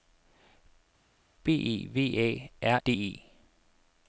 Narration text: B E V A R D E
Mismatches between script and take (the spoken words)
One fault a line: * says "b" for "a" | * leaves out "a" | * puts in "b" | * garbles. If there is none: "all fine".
all fine